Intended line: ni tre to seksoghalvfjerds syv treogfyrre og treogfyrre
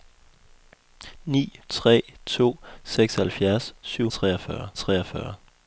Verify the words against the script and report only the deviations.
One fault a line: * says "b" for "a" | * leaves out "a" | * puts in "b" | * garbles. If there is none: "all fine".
all fine